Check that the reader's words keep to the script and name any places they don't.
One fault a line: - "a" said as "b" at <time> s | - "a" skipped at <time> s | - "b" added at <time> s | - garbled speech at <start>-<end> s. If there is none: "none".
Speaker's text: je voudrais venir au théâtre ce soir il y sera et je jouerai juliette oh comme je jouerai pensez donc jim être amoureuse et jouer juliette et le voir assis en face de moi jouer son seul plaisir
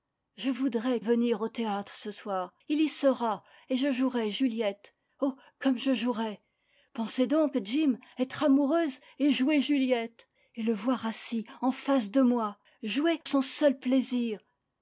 none